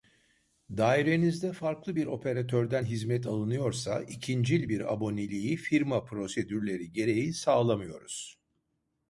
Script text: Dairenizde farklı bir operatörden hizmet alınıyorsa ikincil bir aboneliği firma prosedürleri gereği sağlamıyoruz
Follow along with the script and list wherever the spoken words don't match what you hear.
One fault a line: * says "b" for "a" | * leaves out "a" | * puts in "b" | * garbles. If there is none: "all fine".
all fine